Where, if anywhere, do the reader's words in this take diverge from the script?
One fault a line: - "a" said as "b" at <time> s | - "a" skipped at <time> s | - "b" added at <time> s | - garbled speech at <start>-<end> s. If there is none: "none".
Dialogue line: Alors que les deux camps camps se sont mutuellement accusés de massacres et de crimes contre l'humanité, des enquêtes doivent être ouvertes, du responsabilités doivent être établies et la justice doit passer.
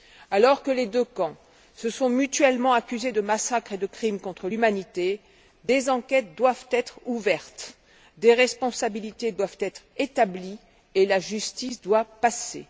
- "camps" skipped at 1.4 s
- "du" said as "des" at 8.2 s